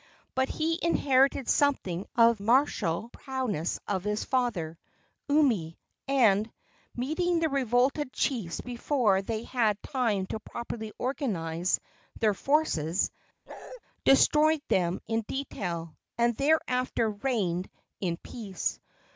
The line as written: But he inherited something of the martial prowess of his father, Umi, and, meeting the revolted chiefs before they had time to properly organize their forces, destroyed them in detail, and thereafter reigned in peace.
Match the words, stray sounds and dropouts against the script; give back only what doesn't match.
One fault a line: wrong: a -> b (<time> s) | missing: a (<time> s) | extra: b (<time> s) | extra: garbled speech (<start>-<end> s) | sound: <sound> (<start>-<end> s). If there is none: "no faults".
missing: the (2.4 s)
sound: bark (13.5-13.8 s)